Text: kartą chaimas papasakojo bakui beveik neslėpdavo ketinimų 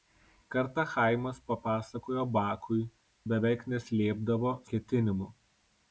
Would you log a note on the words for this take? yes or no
no